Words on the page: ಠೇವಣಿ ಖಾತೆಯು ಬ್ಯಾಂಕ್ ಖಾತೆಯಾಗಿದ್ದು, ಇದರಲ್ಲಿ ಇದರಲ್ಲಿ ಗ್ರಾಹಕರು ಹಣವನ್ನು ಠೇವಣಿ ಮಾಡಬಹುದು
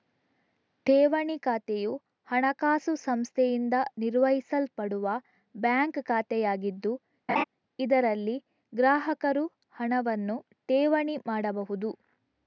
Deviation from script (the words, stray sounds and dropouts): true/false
true